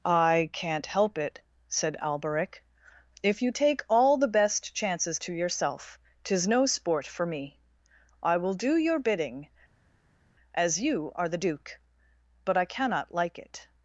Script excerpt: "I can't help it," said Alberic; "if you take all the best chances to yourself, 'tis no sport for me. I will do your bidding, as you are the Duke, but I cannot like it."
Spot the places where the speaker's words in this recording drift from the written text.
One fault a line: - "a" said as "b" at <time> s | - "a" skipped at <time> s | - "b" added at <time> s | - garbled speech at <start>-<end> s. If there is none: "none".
none